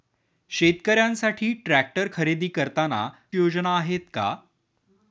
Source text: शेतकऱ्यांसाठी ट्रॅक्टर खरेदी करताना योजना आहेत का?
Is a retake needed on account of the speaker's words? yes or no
no